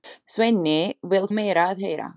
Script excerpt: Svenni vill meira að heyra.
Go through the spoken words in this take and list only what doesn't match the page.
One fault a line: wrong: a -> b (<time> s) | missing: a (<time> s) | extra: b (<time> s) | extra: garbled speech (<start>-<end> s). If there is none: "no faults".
no faults